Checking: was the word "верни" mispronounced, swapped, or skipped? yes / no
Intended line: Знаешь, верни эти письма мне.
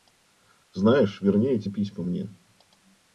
no